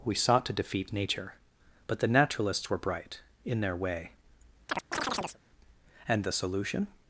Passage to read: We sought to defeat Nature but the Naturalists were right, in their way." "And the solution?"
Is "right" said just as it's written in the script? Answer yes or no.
no